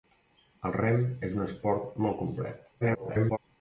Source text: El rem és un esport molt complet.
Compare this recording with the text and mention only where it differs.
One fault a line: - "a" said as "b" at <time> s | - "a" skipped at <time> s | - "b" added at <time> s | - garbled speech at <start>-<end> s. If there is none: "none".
- garbled speech at 2.8-3.4 s